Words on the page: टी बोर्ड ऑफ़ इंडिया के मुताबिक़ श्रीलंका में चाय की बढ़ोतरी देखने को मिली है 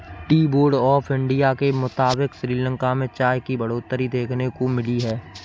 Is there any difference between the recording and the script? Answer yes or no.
no